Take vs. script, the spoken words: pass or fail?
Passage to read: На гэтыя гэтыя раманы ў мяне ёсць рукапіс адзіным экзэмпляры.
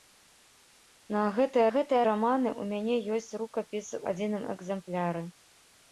pass